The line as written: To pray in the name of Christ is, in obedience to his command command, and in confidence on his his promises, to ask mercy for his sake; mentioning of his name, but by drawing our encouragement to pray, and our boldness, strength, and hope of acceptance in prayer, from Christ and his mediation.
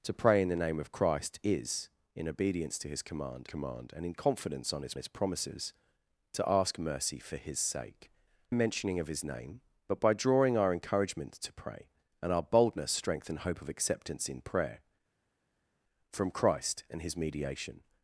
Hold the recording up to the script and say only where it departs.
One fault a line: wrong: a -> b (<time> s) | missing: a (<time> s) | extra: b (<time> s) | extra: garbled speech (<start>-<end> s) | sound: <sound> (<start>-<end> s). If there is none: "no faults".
no faults